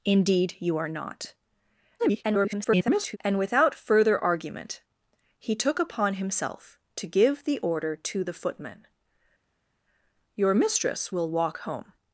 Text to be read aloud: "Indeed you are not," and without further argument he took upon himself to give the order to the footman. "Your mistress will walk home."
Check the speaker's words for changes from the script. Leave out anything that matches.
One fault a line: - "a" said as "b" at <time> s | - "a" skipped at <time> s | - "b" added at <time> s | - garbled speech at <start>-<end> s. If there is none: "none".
- garbled speech at 2.0-3.2 s